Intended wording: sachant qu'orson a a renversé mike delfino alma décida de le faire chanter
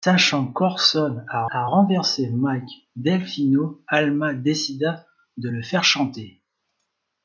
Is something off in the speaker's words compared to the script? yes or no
no